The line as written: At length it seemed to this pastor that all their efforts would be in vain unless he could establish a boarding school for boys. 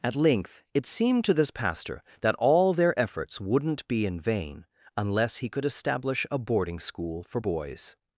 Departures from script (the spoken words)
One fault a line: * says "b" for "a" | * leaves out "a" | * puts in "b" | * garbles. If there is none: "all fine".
* says "wouldn't" for "would"